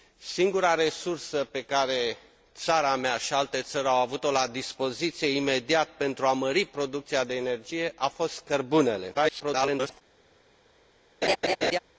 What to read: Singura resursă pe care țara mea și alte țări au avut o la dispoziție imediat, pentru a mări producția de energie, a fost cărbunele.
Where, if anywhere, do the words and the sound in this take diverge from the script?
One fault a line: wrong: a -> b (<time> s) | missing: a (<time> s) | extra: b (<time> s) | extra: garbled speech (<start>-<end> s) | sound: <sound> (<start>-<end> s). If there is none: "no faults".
extra: garbled speech (9.1-10.0 s)
sound: laugh (11.2-11.8 s)